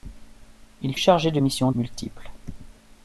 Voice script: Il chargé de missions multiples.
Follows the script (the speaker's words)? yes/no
yes